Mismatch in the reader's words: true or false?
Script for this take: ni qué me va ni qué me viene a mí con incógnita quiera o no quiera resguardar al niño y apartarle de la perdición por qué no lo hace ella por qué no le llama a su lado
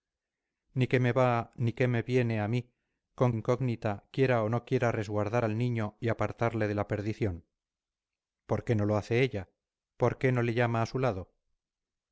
false